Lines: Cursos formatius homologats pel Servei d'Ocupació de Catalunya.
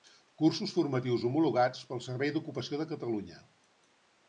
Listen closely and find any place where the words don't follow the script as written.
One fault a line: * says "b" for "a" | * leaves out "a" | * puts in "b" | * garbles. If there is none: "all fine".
all fine